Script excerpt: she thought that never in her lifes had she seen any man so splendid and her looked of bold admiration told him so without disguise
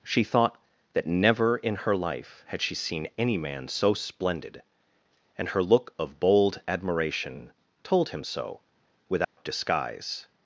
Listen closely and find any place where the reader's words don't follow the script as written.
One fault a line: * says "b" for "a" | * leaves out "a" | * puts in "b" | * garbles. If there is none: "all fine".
* says "life" for "lifes"
* says "look" for "looked"